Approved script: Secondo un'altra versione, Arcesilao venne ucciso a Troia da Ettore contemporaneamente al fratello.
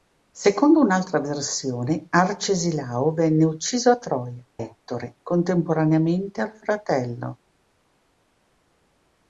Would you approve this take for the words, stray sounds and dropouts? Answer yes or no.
no